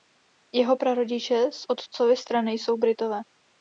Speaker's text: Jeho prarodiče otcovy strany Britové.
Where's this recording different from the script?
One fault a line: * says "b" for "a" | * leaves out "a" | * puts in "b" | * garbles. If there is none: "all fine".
* puts in "z"
* puts in "jsou"